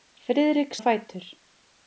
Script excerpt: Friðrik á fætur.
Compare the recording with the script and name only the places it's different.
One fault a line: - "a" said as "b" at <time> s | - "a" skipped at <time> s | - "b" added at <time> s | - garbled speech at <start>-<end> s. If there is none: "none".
none